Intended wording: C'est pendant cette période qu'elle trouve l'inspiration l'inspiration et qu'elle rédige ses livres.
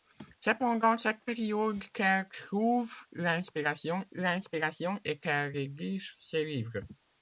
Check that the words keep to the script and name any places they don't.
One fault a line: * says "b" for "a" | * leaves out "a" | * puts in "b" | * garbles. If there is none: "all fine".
all fine